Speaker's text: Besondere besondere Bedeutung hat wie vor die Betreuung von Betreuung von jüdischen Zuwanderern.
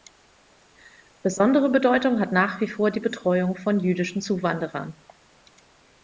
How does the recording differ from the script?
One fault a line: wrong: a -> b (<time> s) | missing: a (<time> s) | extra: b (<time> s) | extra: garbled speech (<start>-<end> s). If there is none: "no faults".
missing: besondere (1.7 s)
extra: nach (2.3 s)
missing: Betreuung von (3.8 s)